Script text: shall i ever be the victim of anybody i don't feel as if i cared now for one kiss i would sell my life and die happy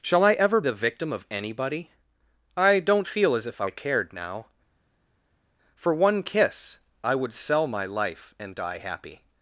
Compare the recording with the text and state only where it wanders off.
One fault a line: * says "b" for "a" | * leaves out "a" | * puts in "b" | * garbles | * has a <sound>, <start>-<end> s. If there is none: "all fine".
* leaves out "be"